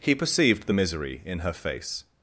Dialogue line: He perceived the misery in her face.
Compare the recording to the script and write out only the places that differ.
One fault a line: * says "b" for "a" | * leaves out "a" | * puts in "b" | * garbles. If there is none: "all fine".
all fine